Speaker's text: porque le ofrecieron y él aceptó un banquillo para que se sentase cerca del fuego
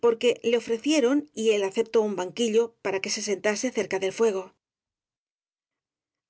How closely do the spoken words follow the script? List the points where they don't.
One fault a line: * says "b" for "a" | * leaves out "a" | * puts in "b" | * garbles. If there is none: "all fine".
all fine